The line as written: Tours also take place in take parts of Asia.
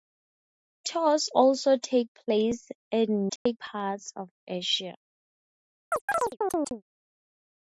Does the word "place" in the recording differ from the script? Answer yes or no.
no